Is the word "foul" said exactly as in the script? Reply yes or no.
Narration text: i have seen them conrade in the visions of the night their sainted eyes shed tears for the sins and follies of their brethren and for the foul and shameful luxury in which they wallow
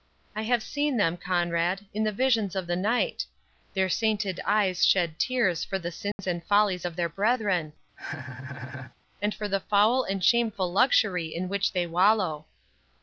yes